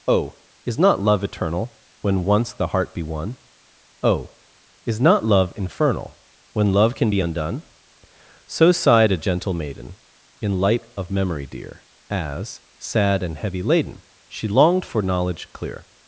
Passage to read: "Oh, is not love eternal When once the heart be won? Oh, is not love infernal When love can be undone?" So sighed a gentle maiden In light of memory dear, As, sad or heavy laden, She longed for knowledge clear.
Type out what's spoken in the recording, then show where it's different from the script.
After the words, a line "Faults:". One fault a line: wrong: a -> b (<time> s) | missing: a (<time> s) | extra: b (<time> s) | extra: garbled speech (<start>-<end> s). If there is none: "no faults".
"Oh, is not love eternal When once the heart be won? Oh, is not love infernal When love can be undone?" So sighed a gentle maiden In light of memory dear, As, sad and heavy laden, She longed for knowledge clear.
Faults:
wrong: or -> and (13.2 s)